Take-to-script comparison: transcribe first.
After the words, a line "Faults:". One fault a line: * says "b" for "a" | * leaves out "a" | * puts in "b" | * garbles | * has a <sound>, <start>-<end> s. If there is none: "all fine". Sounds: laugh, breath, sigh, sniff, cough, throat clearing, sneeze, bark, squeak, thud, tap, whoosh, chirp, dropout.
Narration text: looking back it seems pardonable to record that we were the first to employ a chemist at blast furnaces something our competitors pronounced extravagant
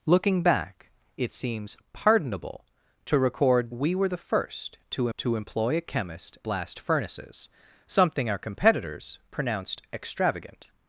looking back it seems pardonable to record we were the first to to employ a chemist blast furnaces something our competitors pronounced extravagant
Faults:
* leaves out "that"
* puts in "to"
* leaves out "at"